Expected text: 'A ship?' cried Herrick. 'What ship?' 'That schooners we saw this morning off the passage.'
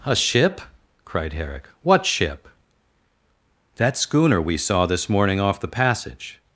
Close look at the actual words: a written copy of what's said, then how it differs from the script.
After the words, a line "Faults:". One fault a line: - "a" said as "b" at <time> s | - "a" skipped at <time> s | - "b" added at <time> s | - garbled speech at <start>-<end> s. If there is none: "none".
'A ship?' cried Herrick. 'What ship?' 'That schooner we saw this morning off the passage.'
Faults:
- "schooners" said as "schooner" at 4.0 s